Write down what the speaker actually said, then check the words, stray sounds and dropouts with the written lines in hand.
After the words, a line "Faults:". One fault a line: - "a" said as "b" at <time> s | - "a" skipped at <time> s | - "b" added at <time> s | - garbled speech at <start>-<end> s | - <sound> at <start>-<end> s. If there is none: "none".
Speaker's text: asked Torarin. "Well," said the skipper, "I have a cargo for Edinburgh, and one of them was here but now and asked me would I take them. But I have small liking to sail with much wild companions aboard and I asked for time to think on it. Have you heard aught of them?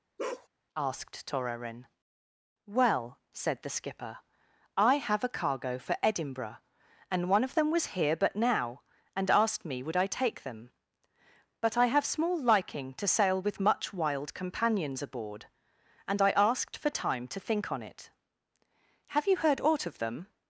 asked Torarin. "Well," said the skipper, "I have a cargo for Edinburgh, and one of them was here but now and asked me would I take them. But I have small liking to sail with much wild companions aboard and I asked for time to think on it. Have you heard aught of them?
Faults:
- bark at 0.2-0.5 s